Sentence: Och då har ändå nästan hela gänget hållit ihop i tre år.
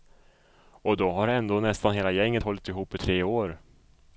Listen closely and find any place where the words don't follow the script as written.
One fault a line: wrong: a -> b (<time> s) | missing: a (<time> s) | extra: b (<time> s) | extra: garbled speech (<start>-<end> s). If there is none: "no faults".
no faults